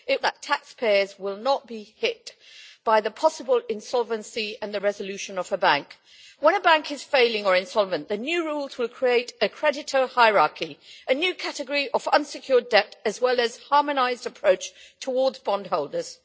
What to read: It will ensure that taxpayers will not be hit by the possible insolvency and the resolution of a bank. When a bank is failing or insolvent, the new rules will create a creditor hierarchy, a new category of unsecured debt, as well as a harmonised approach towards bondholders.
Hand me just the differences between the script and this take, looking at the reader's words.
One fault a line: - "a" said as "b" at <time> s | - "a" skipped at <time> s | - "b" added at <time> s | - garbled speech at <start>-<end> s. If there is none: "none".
- "will ensure" skipped at 0.2 s